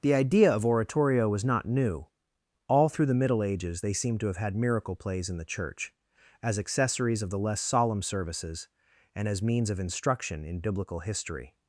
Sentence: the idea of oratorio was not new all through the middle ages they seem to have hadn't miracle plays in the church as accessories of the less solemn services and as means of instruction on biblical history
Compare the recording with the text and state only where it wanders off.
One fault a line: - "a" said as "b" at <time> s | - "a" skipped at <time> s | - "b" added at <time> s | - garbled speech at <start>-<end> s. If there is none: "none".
- "hadn't" said as "had" at 4.4 s
- "on" said as "in" at 10.5 s